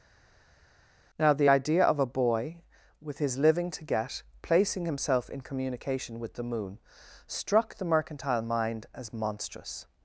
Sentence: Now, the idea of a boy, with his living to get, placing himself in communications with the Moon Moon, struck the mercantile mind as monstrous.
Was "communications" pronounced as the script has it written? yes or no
no